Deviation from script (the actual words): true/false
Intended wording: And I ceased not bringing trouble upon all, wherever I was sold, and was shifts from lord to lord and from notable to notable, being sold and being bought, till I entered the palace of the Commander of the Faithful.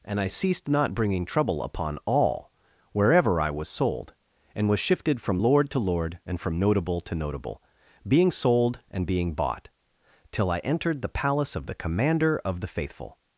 true